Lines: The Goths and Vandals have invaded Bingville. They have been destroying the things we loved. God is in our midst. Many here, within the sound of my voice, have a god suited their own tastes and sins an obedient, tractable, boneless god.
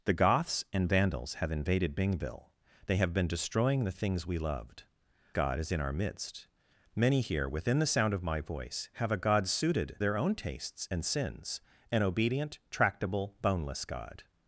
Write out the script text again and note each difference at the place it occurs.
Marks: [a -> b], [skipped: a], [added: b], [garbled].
The Goths and Vandals have invaded Bingville. They have been destroying the things we loved. God is in our midst. Many here, within the sound of my voice, have a god suited their own tastes and sins an obedient, tractable, boneless god.